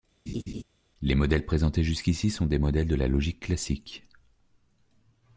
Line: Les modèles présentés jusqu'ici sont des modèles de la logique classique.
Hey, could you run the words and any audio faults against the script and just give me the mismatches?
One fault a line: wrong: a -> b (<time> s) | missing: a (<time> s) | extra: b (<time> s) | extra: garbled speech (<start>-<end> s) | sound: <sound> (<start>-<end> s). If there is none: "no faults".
sound: laugh (0.3-0.6 s)